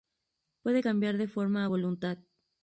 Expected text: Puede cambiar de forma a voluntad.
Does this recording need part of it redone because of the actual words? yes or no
no